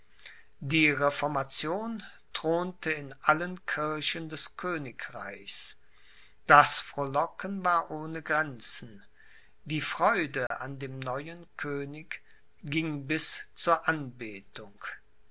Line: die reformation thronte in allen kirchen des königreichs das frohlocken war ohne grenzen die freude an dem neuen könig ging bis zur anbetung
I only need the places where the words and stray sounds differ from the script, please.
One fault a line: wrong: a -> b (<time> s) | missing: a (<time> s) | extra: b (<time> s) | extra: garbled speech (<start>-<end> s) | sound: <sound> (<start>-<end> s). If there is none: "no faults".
sound: dropout (10.5-10.5 s)